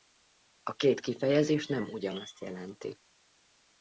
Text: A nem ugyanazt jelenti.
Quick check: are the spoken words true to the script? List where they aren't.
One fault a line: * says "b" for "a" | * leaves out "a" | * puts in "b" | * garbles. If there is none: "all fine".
* puts in "két kifejezés"